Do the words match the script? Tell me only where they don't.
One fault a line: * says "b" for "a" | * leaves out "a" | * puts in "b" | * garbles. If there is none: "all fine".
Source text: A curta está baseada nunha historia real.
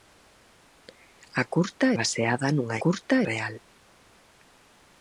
* leaves out "está"
* says "curta" for "historia"